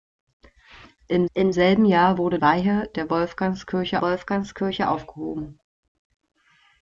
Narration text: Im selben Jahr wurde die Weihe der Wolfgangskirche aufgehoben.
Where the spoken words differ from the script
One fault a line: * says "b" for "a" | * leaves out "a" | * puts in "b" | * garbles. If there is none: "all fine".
* puts in "im"
* leaves out "die"
* puts in "Wolfgangskirche"